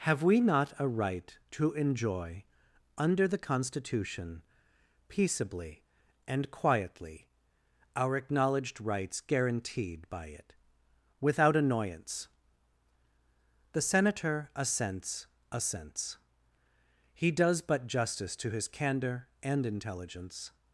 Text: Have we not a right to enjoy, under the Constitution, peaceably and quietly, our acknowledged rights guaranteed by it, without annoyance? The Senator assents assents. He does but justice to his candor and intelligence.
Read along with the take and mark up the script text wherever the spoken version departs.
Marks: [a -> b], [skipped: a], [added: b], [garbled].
Have we not a right to enjoy, under the Constitution, peaceably and quietly, our acknowledged rights guaranteed by it, without annoyance? The Senator assents assents. He does but justice to his candor and intelligence.